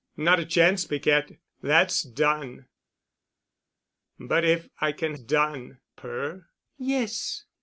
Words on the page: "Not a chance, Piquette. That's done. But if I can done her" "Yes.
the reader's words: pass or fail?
pass